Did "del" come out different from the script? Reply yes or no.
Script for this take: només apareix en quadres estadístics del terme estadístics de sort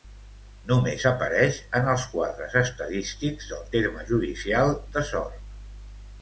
no